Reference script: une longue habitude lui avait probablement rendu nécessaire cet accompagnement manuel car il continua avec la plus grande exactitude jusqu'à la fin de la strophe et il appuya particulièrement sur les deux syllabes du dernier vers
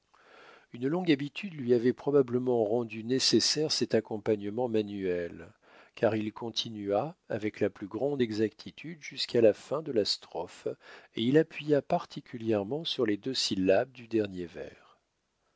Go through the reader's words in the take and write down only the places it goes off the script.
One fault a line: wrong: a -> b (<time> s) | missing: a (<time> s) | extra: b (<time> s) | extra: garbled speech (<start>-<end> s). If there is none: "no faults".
no faults